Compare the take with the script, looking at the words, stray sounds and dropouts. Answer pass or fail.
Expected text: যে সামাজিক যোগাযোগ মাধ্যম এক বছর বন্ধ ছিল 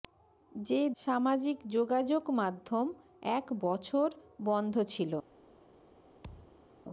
fail